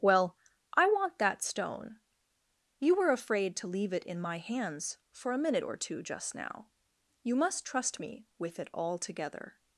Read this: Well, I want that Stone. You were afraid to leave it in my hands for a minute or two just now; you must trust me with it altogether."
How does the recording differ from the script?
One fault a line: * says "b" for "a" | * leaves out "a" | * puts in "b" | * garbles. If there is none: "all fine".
all fine